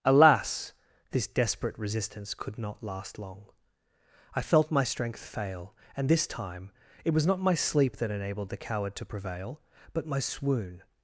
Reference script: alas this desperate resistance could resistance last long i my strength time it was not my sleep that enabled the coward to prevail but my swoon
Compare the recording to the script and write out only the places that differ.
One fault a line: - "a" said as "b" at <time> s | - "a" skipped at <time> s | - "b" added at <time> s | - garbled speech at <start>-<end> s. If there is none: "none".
- "resistance" said as "not" at 2.6 s
- "felt" added at 4.4 s
- "fail and this" added at 5.2 s